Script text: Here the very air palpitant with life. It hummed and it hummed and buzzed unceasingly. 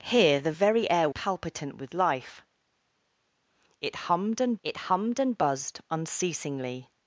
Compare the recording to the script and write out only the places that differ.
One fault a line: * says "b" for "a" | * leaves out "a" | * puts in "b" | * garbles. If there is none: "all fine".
all fine